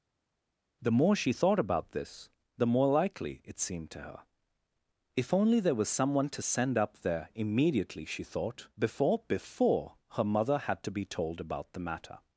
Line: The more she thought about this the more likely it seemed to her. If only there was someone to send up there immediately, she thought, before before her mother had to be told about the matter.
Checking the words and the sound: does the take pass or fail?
pass